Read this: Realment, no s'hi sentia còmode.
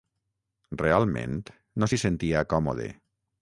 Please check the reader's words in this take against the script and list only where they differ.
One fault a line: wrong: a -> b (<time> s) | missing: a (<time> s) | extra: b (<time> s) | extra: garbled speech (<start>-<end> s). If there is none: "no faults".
no faults